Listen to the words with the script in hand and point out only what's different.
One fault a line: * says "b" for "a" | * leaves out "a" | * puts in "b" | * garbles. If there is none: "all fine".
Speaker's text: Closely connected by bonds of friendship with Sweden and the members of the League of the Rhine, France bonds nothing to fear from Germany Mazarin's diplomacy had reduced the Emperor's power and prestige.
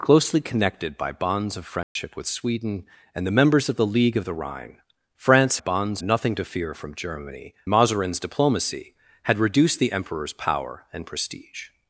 all fine